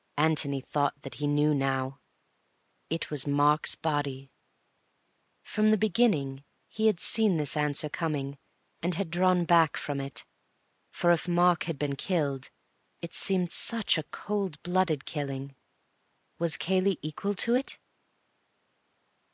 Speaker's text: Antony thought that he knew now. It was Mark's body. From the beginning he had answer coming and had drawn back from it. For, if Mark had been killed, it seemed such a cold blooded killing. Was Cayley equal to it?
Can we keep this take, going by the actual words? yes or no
no